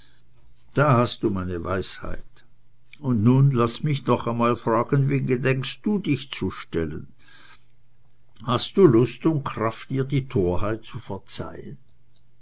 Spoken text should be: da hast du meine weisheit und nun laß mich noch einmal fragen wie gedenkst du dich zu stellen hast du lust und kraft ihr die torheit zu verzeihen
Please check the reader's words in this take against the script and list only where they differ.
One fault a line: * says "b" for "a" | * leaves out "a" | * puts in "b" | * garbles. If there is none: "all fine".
all fine